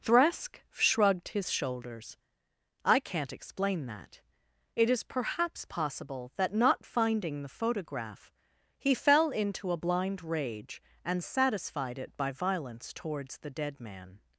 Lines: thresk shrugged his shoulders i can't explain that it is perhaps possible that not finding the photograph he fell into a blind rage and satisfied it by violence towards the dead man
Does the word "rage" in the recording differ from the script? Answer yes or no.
no